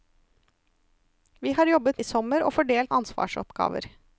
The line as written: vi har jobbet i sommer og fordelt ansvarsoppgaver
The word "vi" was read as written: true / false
true